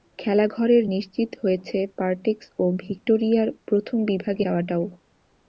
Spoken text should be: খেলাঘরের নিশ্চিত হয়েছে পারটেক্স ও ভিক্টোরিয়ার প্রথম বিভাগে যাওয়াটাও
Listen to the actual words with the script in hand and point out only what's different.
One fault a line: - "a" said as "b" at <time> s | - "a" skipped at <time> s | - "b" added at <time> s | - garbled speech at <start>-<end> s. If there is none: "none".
none